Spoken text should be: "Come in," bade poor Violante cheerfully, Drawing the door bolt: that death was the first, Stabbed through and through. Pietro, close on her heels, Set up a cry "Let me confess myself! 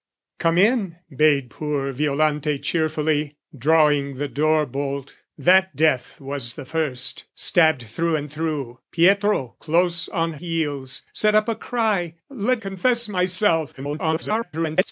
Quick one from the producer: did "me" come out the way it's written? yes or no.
no